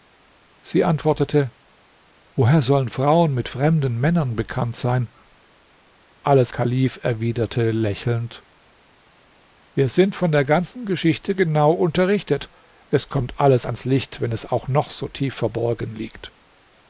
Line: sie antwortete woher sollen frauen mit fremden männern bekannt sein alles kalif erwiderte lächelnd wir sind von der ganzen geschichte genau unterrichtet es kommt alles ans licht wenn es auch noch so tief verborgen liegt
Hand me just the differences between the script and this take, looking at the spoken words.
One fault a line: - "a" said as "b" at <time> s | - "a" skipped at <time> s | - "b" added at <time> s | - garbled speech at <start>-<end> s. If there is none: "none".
none